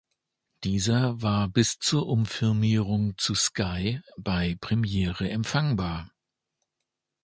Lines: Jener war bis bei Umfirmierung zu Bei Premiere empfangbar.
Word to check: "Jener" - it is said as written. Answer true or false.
false